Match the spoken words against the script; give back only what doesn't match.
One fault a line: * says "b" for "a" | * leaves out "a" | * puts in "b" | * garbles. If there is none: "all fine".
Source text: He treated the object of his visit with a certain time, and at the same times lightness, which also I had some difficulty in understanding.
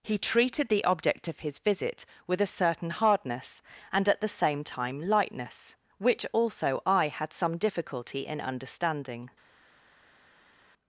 * says "hardness" for "time"
* says "time" for "times"